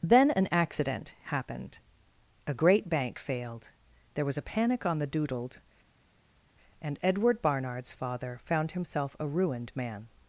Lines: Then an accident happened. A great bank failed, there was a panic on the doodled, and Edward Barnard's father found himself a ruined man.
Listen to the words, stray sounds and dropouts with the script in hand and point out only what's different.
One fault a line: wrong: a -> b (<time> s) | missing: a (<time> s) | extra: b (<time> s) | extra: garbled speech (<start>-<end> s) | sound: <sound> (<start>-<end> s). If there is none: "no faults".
no faults